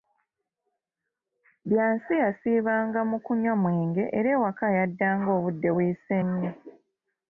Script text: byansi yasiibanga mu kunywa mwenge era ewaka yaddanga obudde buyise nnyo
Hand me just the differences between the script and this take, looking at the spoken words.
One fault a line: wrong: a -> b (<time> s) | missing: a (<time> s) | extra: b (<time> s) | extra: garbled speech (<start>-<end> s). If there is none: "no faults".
no faults